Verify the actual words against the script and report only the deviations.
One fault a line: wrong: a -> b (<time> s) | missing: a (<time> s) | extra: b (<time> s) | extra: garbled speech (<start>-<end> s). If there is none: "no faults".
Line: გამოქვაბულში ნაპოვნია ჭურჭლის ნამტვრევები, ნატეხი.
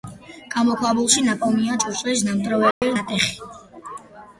no faults